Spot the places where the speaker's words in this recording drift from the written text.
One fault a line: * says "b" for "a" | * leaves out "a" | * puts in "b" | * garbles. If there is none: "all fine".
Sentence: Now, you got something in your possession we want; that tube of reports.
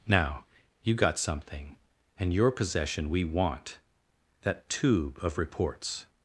* says "and" for "in"